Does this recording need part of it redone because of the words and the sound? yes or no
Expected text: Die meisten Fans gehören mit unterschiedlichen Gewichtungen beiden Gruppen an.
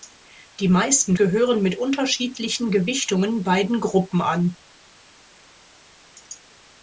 yes